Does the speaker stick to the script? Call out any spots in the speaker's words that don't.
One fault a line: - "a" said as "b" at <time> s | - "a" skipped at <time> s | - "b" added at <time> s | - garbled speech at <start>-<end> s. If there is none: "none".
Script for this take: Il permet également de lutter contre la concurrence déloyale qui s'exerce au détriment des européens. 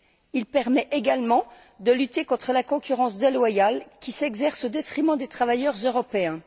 - "travailleurs" added at 5.3 s